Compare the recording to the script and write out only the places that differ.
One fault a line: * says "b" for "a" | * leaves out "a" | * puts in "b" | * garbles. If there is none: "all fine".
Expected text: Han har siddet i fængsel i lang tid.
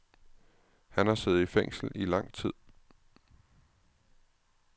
all fine